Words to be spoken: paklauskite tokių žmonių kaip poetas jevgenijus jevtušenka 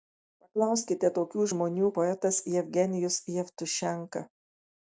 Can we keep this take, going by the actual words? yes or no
no